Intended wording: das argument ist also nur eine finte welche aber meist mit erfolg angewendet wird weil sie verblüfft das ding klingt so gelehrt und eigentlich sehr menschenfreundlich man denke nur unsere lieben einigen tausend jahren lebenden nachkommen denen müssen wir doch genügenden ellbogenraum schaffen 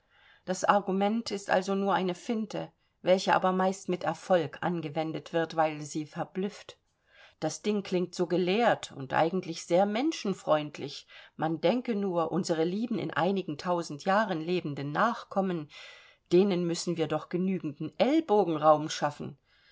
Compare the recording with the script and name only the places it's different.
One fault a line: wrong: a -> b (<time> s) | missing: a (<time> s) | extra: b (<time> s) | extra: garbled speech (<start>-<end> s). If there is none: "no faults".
extra: in (13.0 s)